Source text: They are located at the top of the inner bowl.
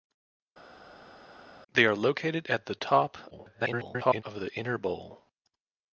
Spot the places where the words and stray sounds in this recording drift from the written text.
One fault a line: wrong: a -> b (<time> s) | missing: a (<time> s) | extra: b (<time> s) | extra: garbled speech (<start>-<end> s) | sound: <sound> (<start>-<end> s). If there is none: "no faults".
extra: garbled speech (3.3-4.2 s)